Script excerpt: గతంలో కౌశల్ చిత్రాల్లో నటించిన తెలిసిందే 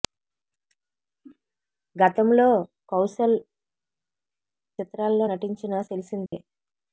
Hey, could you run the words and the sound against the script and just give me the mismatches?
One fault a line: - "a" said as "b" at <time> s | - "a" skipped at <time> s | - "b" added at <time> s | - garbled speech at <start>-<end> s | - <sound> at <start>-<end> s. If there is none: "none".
- dropout at 6.3-6.3 s